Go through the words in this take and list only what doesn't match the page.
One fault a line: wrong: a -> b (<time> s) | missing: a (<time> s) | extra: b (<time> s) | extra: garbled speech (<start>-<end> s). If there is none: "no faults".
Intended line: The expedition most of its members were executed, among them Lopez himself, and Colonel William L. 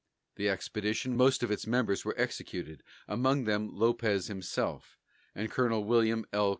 no faults